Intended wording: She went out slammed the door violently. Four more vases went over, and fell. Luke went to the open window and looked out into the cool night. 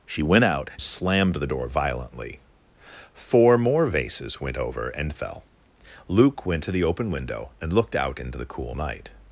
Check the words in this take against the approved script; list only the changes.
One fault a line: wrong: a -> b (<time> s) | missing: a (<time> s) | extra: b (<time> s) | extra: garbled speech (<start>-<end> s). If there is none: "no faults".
no faults